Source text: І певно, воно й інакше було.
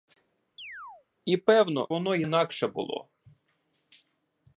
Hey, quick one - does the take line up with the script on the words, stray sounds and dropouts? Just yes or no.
no